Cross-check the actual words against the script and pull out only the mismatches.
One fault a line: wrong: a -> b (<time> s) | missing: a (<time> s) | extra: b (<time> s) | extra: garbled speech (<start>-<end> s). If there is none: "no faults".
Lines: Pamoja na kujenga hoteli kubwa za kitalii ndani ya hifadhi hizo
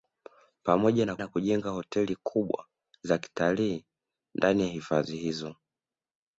extra: na (1.2 s)